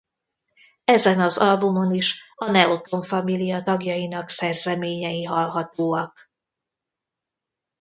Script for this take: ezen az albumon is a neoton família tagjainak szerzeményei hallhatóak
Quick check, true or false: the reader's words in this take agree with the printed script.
true